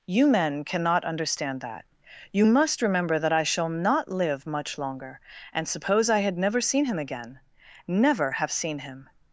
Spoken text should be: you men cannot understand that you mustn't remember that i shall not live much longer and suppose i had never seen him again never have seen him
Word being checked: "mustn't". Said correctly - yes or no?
no